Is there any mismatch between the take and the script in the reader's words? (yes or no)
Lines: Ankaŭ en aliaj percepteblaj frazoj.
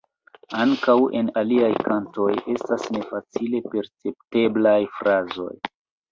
yes